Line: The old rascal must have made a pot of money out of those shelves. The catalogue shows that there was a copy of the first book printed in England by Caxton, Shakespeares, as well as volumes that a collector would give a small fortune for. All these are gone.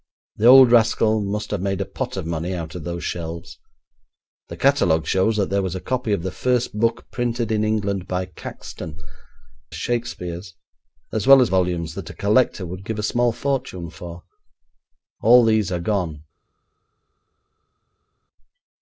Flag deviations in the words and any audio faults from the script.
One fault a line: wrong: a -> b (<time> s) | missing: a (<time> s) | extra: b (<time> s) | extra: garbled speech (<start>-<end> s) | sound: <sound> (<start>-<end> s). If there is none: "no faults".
no faults